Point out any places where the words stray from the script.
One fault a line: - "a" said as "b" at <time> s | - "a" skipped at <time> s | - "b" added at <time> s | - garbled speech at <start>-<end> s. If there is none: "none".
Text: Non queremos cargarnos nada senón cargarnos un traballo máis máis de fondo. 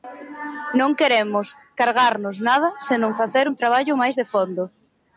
- "cargarnos" said as "facer" at 3.2 s
- "máis" skipped at 4.2 s